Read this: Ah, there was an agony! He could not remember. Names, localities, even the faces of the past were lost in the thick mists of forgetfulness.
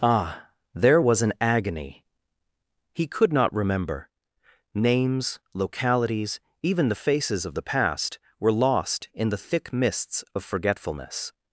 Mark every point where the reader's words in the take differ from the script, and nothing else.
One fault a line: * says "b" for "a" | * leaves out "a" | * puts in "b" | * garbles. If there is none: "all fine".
all fine